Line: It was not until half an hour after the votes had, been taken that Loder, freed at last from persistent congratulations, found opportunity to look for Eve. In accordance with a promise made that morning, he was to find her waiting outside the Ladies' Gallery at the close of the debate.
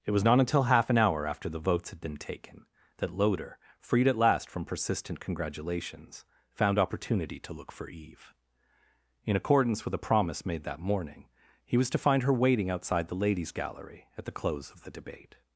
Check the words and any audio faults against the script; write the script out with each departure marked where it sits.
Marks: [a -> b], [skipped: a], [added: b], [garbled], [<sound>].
It was not until half an hour after the votes had, been taken that Loder, freed at last from persistent congratulations, found opportunity to look for Eve. In accordance with a promise made that morning, he was to find her waiting outside the Ladies' Gallery at the close of the debate.